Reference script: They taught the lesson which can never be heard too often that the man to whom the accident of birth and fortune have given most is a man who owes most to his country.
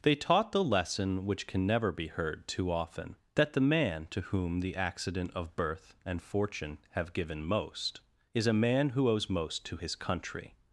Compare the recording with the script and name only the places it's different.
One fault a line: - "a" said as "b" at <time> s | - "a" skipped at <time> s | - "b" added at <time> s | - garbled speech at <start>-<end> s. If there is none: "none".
none